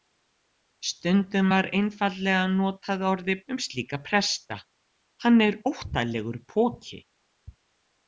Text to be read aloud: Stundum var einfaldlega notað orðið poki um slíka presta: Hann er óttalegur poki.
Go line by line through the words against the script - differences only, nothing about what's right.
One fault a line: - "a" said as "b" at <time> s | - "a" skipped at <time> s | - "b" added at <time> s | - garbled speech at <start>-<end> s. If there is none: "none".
- "poki" skipped at 3.4 s